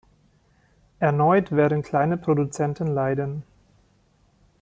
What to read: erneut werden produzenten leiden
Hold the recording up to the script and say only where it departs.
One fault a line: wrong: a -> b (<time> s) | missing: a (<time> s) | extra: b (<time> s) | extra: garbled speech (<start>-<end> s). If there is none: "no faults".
extra: kleine (1.8 s)